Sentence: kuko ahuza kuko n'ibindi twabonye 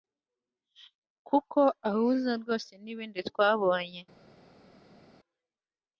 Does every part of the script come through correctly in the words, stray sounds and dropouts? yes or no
no